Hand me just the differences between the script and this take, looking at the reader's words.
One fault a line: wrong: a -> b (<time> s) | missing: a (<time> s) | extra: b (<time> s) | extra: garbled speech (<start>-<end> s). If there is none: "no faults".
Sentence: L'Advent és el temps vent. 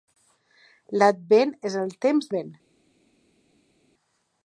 no faults